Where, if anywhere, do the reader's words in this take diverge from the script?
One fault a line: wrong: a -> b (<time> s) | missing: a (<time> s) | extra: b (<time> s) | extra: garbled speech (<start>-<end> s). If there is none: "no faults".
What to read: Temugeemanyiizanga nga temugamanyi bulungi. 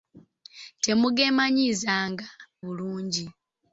missing: nga temugamanyi (2.3 s)